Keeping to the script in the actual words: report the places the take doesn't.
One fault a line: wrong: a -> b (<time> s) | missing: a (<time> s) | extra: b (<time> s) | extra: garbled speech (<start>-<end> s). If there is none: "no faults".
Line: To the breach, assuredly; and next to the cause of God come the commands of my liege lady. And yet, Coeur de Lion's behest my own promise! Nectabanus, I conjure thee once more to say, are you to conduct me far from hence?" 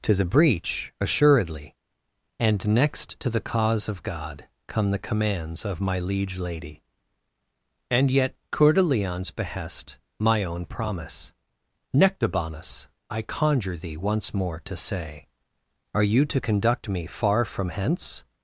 no faults